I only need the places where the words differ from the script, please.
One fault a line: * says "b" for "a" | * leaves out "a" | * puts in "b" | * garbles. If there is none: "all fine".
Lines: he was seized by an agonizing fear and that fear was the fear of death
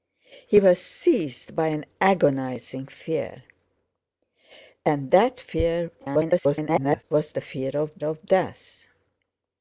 * garbles
* puts in "of"